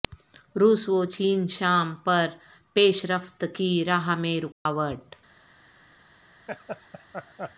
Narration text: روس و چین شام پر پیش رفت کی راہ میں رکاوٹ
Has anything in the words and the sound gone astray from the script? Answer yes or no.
yes